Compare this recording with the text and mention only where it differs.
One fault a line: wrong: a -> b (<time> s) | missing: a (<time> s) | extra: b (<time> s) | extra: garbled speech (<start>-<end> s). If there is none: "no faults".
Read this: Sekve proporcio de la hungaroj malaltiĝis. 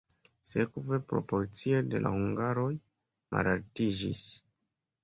no faults